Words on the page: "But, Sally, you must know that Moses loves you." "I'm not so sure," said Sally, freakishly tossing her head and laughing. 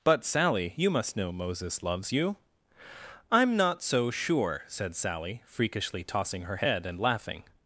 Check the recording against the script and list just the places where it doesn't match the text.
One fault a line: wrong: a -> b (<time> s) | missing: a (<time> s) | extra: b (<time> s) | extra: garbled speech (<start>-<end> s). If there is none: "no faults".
missing: that (1.3 s)